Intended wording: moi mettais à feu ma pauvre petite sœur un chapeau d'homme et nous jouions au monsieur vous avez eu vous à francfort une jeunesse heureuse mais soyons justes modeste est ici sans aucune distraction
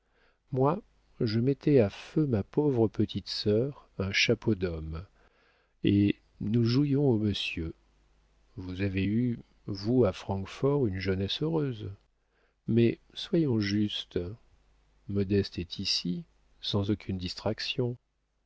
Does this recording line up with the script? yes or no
no